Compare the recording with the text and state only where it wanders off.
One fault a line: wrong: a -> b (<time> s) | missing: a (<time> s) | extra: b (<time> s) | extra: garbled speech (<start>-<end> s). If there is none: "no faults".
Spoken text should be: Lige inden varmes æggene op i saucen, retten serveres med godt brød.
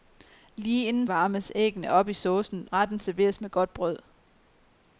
no faults